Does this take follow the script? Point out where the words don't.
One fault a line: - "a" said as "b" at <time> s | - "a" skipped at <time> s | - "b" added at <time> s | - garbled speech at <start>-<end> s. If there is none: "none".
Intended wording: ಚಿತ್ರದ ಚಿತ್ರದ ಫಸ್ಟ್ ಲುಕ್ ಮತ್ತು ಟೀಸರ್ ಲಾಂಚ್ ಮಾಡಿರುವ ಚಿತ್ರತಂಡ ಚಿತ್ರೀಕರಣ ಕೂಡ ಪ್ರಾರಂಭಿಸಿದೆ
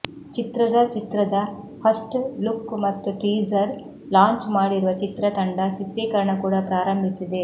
none